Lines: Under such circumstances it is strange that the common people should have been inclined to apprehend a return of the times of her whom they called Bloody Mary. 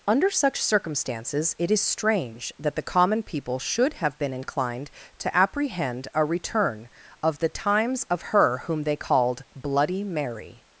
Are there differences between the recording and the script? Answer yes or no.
no